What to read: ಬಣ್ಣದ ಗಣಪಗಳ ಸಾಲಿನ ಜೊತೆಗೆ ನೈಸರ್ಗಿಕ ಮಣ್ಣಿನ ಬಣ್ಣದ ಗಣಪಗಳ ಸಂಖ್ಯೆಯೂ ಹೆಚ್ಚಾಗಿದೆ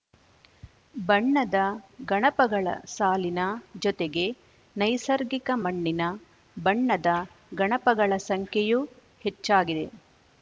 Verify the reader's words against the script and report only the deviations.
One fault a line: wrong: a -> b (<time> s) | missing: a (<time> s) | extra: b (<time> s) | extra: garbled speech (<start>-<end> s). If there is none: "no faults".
no faults